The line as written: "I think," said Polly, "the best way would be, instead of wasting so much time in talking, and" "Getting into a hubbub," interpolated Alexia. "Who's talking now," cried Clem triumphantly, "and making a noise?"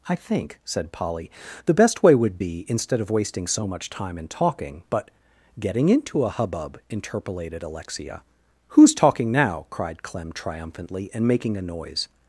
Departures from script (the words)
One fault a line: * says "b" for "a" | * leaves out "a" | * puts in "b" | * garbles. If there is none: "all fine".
* says "but" for "and"